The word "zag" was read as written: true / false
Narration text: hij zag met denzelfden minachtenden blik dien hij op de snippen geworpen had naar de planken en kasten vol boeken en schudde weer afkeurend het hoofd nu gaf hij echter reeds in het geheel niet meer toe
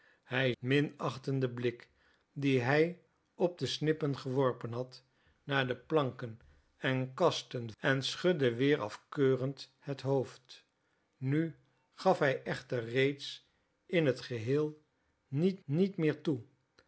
false